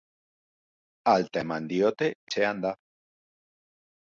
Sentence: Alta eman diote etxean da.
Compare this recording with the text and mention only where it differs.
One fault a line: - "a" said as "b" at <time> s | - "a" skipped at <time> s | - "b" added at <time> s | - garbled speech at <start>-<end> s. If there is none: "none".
none